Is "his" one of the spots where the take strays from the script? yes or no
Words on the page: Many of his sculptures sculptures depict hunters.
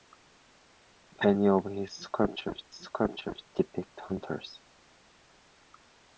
no